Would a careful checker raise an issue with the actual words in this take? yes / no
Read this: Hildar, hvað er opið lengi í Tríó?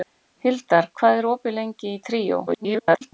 yes